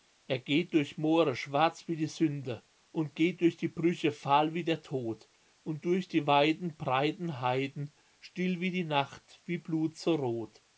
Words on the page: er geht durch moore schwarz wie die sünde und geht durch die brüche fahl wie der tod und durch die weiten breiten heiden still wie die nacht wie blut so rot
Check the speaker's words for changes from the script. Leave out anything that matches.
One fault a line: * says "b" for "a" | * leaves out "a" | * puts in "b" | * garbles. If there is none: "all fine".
all fine